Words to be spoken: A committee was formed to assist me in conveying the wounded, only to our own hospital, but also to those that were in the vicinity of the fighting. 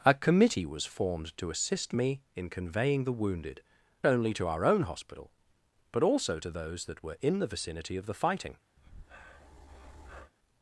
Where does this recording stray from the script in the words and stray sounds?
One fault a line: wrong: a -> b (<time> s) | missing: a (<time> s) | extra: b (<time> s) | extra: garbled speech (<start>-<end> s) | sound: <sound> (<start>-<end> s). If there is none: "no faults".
sound: breath (8.8-10.3 s)